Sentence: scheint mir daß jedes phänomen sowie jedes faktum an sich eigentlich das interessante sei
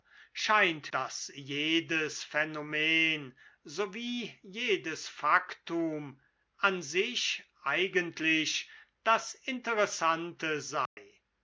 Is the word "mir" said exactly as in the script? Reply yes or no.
no